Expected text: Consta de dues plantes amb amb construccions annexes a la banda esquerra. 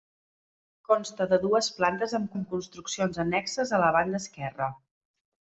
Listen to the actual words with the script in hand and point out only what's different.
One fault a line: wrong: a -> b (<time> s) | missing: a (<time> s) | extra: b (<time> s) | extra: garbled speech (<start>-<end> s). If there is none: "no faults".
no faults